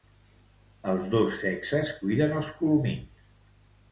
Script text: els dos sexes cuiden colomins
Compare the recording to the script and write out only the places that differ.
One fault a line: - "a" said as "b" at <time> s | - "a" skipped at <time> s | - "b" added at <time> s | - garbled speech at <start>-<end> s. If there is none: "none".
- "els" added at 2.4 s